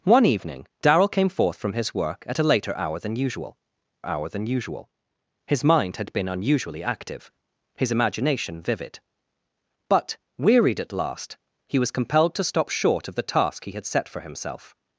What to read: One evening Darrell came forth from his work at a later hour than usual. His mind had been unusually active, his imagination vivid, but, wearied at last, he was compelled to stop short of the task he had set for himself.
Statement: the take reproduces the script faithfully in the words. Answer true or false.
false